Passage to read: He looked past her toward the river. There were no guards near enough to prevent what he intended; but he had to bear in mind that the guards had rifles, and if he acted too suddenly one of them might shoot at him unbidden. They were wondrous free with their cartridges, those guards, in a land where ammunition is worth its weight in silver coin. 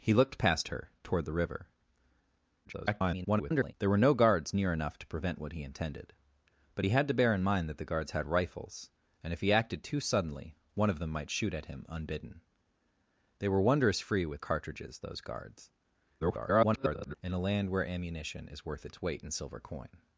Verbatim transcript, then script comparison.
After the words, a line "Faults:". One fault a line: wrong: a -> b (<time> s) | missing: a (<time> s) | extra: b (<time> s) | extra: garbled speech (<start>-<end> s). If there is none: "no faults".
He looked past her toward the river. [garbled] There were no guards near enough to prevent what he intended; but he had to bear in mind that the guards had rifles, and if he acted too suddenly one of them might shoot at him unbidden. They were wondrous free with cartridges, those guards, [garbled] in a land where ammunition is worth its weight in silver coin.
Faults:
extra: garbled speech (2.6-3.7 s)
missing: their (14.4 s)
extra: garbled speech (16.2-17.1 s)